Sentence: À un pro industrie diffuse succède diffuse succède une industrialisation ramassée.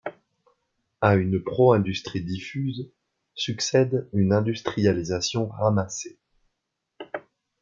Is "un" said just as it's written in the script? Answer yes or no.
no